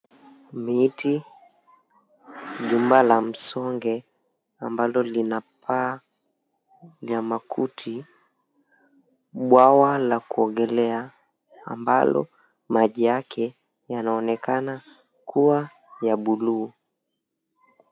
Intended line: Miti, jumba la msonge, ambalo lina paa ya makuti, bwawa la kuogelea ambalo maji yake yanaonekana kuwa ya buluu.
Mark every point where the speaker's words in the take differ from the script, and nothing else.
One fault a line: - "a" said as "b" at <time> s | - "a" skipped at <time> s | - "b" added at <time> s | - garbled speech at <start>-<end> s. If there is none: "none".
none